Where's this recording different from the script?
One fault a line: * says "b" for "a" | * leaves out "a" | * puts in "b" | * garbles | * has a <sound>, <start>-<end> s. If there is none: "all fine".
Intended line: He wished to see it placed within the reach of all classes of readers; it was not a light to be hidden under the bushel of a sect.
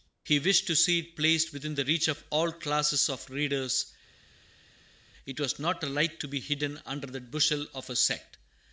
all fine